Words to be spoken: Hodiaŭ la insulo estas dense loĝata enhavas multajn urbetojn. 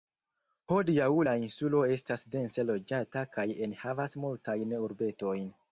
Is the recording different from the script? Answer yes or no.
yes